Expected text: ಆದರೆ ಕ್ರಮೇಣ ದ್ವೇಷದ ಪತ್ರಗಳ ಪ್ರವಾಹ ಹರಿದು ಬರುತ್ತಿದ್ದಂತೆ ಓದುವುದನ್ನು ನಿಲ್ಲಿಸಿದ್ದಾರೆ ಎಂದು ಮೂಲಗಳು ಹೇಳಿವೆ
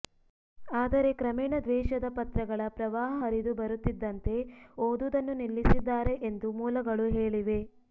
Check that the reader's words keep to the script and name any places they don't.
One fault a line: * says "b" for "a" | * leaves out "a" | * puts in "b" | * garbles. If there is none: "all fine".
all fine